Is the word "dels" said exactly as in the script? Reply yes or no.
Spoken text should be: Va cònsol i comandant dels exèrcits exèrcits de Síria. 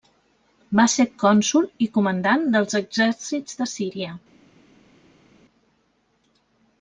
yes